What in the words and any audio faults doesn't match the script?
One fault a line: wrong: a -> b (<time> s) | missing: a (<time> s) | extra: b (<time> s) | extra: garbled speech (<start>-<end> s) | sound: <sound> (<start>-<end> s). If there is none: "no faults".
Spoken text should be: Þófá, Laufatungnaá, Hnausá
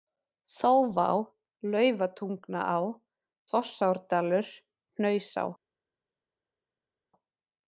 extra: Fossárdalur (3.5 s)